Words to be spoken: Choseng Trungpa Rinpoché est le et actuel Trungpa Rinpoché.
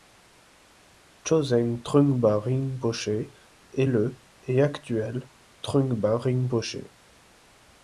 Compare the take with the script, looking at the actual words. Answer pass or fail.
pass